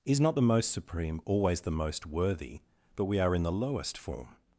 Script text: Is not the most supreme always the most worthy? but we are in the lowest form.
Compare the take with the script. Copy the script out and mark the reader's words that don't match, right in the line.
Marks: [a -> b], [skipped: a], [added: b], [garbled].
Is not the most supreme always the most worthy? but we are in the lowest form.